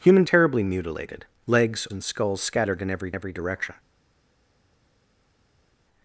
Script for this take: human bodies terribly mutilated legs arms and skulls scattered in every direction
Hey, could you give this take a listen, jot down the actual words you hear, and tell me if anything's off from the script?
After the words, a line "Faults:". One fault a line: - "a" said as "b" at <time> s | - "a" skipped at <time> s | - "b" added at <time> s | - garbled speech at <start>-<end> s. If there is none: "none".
human terribly mutilated legs and skulls scattered in every every direction
Faults:
- "bodies" skipped at 0.2 s
- "arms" skipped at 1.9 s
- "every" added at 3.1 s